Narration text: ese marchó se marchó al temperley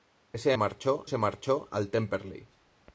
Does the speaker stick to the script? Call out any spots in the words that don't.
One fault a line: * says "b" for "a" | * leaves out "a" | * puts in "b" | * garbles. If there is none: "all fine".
all fine